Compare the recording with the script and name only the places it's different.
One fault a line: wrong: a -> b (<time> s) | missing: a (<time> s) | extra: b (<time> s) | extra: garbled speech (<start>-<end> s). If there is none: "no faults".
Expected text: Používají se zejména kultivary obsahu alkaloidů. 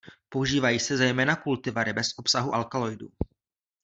extra: bez (1.9 s)